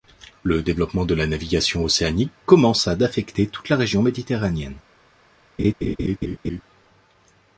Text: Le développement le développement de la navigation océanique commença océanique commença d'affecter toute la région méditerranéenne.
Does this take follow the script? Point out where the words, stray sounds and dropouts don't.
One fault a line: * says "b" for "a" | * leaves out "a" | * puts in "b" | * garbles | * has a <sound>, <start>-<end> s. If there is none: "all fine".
* leaves out "le développement"
* leaves out "océanique commença"
* has a laugh, 5.6-6.6 s